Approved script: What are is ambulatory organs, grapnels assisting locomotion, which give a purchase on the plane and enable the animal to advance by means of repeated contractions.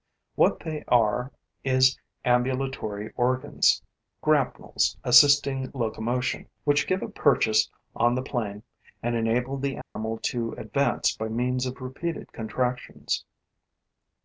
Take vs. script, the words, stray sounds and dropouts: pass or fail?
fail